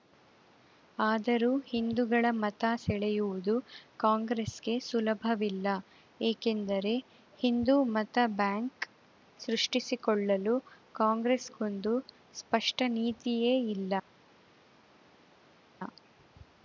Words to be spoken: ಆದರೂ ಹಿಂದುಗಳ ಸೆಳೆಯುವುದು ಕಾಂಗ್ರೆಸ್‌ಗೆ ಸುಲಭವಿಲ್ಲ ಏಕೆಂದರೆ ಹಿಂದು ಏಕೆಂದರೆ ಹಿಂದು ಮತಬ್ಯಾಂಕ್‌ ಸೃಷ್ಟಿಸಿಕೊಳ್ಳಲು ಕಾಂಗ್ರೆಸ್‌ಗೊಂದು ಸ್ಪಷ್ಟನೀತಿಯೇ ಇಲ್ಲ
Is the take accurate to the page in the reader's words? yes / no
no